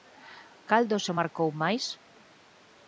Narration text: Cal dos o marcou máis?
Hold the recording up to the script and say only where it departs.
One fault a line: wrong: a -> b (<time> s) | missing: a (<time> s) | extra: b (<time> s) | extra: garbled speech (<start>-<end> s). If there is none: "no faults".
no faults